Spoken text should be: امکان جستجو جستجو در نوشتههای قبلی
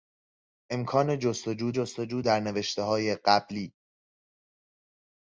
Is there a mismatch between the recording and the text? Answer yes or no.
no